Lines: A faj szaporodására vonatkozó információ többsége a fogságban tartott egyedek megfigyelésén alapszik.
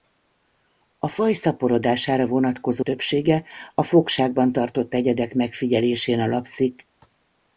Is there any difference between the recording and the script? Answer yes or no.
yes